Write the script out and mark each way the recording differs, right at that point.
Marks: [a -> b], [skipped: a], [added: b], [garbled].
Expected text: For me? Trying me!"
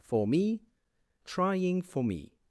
For me? Trying [added: for] me!"